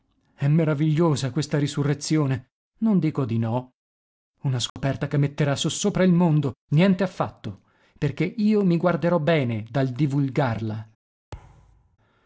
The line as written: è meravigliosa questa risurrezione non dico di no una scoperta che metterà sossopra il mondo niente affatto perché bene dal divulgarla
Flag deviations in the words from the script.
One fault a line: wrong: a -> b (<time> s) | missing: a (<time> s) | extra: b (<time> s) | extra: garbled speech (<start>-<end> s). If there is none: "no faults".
extra: io mi guarderò (8.2 s)